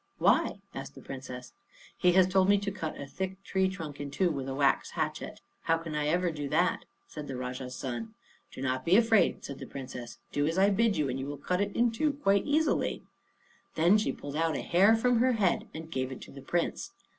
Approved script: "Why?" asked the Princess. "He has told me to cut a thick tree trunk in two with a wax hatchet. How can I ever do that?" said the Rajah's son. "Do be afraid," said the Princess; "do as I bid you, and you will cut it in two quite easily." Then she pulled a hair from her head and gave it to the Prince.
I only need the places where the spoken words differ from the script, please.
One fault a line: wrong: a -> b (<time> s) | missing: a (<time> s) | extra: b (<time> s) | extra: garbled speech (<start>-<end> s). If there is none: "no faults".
extra: not (8.6 s)
extra: out (14.4 s)